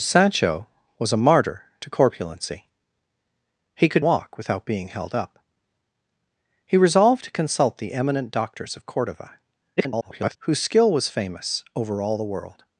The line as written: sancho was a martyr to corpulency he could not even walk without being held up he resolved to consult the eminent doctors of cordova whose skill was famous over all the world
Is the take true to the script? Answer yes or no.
no